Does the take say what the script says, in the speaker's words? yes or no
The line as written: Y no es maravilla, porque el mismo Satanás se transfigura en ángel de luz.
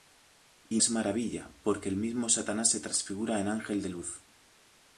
no